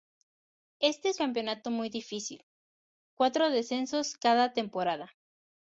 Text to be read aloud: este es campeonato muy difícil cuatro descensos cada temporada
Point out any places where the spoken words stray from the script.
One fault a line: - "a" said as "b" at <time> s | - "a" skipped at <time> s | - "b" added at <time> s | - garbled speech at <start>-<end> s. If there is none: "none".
none